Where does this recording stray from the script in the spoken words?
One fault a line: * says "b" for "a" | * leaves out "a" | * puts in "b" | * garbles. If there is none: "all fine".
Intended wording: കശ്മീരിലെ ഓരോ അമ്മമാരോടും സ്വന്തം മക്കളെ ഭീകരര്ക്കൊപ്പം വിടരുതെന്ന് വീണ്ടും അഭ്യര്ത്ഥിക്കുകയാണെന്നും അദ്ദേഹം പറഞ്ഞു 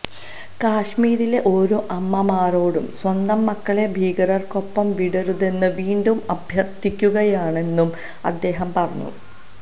all fine